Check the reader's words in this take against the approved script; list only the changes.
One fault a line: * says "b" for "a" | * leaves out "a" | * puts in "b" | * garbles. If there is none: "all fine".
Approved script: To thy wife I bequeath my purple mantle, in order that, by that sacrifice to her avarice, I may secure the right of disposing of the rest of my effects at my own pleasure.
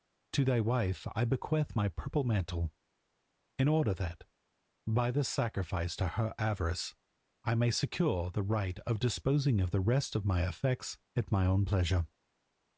* says "this" for "that"